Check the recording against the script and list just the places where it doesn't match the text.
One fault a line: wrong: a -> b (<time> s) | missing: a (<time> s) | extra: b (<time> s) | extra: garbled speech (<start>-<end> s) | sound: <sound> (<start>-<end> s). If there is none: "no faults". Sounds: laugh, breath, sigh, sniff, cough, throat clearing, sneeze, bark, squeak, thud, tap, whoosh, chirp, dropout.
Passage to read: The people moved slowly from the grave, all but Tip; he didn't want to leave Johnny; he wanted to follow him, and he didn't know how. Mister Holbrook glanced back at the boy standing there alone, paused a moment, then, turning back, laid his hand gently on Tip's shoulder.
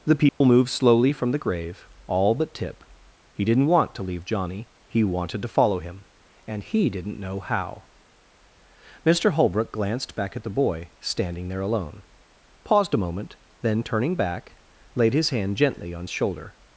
sound: dropout (0.3-0.4 s)
missing: Tip's (16.1 s)